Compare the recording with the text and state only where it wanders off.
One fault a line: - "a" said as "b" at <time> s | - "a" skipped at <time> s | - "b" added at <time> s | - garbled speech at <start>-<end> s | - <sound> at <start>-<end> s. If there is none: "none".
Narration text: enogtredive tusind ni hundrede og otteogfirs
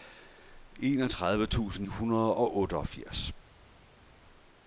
- "ni" skipped at 1.9 s